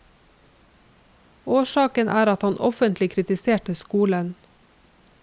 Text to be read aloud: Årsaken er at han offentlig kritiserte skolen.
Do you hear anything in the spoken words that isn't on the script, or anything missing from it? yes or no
no